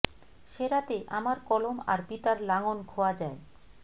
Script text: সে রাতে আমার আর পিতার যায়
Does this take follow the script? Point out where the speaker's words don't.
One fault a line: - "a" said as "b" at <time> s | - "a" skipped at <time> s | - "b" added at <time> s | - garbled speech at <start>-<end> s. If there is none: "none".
- "কলম" added at 1.5 s
- "লাঙল খোয়া" added at 2.5 s